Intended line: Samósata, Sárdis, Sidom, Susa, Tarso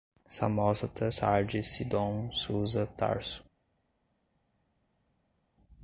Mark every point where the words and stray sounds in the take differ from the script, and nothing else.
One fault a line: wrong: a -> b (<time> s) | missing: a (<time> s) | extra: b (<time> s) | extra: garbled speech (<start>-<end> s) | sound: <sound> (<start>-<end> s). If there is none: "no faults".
no faults